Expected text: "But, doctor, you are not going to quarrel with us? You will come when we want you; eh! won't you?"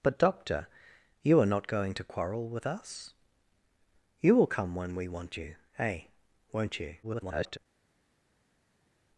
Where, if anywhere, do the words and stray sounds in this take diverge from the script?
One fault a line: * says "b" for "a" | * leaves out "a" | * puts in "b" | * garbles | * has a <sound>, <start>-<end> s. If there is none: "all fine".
* garbles